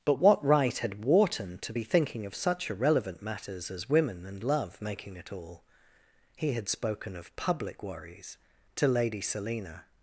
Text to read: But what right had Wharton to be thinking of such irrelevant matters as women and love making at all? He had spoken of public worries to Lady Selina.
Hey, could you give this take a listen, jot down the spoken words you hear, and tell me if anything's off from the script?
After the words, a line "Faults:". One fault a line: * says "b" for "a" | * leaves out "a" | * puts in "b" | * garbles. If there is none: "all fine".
But what right had Wharton to be thinking of such irrelevant matters as women and love making it all? He had spoken of public worries to Lady Selina.
Faults:
* says "it" for "at"